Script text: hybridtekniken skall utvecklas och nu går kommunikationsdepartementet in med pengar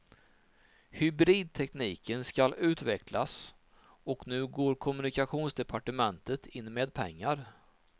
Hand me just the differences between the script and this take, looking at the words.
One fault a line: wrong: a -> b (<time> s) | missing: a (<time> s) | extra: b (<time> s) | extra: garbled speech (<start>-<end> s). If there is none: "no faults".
no faults